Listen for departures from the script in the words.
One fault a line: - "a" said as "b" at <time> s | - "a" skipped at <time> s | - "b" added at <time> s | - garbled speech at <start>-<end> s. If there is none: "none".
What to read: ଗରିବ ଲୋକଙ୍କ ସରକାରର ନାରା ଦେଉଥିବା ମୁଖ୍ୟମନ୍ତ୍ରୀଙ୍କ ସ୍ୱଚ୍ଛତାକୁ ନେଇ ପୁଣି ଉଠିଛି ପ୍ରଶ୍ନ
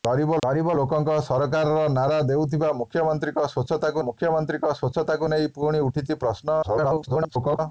- "ଗରିବ" added at 0.4 s
- "ମୁଖ୍ୟମନ୍ତ୍ରୀଙ୍କ ସ୍ୱଚ୍ଛତାକୁ" added at 4.0 s
- garbled speech at 6.6-7.6 s